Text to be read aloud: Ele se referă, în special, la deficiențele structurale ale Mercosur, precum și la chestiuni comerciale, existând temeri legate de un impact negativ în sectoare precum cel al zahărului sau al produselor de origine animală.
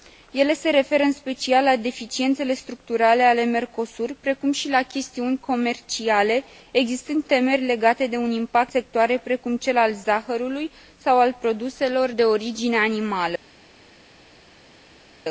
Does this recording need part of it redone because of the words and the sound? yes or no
yes